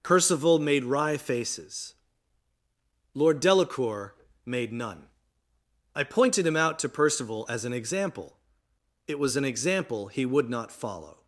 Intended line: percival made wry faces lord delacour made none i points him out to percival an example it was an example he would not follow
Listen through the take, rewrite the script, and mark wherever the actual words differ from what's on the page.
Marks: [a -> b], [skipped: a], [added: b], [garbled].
percival made wry faces lord delacour made none i [points -> pointed] him out to percival [added: as] an example it was an example he would not follow